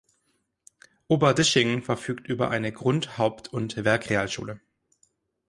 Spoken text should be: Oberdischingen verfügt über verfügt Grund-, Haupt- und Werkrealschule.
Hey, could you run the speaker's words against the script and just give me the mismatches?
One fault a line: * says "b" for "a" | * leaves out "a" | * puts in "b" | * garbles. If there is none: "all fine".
* says "eine" for "verfügt"